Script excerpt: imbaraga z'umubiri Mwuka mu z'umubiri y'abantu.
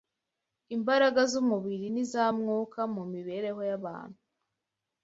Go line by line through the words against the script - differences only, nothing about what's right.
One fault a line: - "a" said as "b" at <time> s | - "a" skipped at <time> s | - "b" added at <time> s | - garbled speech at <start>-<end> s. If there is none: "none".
- "n'iza" added at 1.9 s
- "z'umubiri" said as "mibereho" at 3.1 s